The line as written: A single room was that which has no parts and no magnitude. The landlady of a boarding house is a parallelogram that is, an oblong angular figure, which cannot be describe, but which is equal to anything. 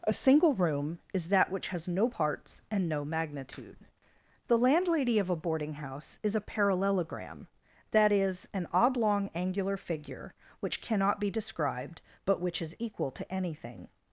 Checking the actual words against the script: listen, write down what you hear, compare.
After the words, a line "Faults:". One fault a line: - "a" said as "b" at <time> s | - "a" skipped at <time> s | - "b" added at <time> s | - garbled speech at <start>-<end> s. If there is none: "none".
A single room is that which has no parts and no magnitude. The landlady of a boarding house is a parallelogram that is, an oblong angular figure, which cannot be described, but which is equal to anything.
Faults:
- "was" said as "is" at 1.1 s
- "describe" said as "described" at 11.3 s